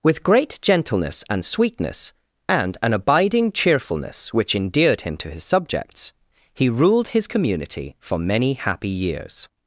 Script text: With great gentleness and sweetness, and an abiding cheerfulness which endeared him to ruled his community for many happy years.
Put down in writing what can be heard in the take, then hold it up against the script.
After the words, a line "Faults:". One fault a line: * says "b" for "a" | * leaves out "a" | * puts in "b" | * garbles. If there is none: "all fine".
With great gentleness and sweetness, and an abiding cheerfulness which endeared him to his subjects, he ruled his community for many happy years.
Faults:
* puts in "his subjects he"